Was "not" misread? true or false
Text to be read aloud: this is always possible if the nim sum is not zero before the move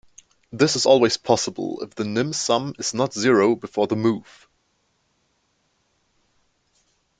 false